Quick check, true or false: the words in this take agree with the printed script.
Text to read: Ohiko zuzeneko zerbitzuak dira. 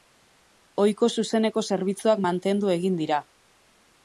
false